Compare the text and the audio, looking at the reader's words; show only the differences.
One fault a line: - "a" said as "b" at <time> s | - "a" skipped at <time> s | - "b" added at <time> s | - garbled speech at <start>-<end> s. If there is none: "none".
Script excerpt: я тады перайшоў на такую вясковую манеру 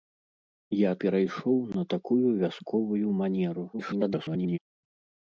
- "тады" skipped at 0.9 s
- garbled speech at 3.7-4.6 s